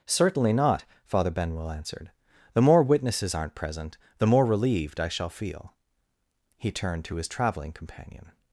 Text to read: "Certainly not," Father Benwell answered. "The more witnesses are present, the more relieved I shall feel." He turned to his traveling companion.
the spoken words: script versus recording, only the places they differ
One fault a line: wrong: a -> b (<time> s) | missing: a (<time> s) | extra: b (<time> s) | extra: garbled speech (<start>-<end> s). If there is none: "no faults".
wrong: are -> aren't (3.4 s)